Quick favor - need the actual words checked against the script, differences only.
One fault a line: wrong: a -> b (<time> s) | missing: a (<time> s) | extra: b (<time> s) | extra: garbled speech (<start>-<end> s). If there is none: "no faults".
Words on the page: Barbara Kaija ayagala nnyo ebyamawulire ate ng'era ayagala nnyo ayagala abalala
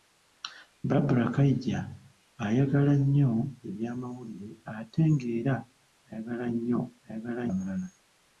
no faults